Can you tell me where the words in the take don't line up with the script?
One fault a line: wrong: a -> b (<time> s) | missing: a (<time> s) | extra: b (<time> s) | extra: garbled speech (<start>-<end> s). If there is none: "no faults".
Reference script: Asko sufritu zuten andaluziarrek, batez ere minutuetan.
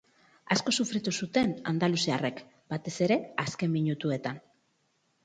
extra: azken (3.5 s)